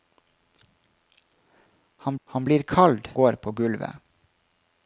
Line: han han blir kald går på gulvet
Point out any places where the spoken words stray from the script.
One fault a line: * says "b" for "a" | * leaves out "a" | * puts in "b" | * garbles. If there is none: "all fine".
all fine